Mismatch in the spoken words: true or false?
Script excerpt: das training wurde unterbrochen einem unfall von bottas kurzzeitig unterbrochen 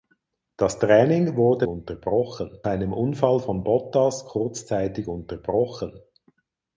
false